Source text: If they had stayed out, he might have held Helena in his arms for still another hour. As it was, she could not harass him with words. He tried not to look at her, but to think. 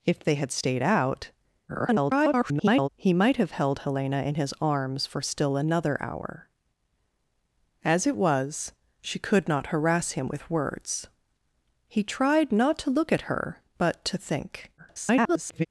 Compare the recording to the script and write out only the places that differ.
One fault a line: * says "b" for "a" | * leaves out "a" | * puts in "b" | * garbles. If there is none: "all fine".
* garbles
* garbles